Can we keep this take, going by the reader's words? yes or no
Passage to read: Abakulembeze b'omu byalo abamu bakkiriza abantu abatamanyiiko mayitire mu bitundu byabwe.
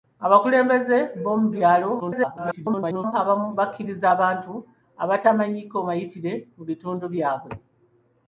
no